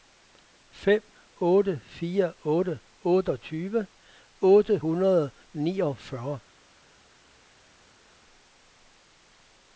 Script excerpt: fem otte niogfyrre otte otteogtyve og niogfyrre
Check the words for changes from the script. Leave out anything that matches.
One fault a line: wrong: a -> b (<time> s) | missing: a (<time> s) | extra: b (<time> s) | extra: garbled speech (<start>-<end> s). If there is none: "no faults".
wrong: niogfyrre -> fire (2.0 s)
extra: otte hundrede (4.4 s)